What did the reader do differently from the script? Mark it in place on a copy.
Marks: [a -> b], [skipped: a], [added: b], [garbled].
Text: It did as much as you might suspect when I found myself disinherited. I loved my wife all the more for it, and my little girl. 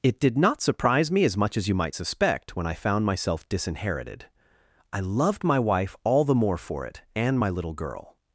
It did [added: not surprise me] as much as you might suspect when I found myself disinherited. I loved my wife all the more for it, and my little girl.